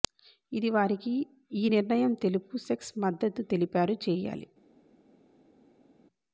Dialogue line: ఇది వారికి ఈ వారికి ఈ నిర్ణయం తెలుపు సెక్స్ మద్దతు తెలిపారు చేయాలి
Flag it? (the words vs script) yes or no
yes